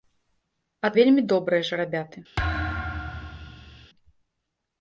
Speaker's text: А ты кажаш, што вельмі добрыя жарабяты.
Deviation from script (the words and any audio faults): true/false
true